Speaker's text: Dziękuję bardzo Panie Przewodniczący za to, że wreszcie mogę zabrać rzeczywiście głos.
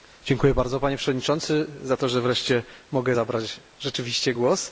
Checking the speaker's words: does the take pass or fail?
pass